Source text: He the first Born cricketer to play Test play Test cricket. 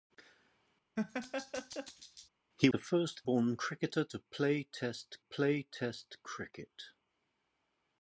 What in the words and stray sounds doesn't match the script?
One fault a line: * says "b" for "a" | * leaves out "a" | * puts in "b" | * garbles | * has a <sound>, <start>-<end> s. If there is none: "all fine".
* has a laugh, 1.0-2.3 s